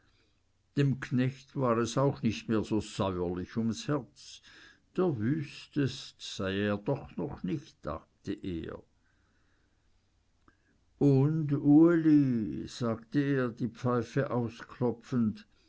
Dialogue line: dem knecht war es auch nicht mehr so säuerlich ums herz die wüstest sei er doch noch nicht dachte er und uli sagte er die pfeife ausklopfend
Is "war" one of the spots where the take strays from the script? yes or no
no